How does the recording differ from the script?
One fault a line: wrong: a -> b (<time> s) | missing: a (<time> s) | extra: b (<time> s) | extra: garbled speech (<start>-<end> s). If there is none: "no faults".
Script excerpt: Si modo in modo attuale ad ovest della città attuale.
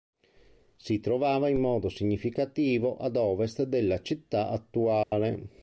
wrong: modo -> trovava (1.0 s)
wrong: attuale -> significativo (1.9 s)